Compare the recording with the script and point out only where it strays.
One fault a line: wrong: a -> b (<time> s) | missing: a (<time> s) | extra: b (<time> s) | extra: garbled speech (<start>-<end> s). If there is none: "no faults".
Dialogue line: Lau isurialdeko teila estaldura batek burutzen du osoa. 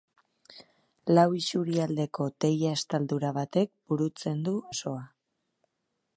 no faults